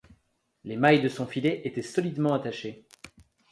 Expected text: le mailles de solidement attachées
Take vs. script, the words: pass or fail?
fail